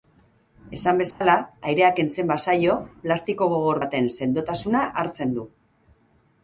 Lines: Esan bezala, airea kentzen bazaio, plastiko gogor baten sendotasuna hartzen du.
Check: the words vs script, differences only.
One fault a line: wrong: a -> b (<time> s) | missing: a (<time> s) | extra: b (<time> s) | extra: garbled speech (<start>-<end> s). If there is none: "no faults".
no faults